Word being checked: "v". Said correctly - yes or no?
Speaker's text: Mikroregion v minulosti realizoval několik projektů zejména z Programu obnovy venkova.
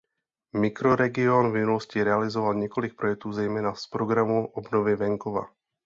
yes